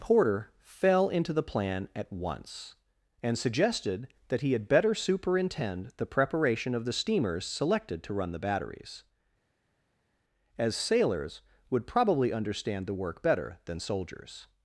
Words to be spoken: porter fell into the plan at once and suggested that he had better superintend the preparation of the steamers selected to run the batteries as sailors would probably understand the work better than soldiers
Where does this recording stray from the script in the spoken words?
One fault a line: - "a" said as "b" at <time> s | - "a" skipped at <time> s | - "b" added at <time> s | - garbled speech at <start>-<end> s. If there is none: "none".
none